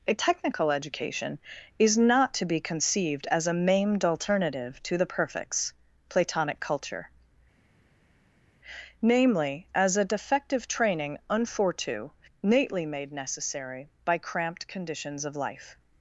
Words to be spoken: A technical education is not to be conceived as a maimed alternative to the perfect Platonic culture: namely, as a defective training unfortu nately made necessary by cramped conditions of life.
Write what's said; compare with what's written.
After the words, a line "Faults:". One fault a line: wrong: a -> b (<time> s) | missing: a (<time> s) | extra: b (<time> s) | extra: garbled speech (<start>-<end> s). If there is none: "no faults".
A technical education is not to be conceived as a maimed alternative to the perfects Platonic culture: namely, as a defective training unfortu nately made necessary by cramped conditions of life.
Faults:
wrong: perfect -> perfects (5.0 s)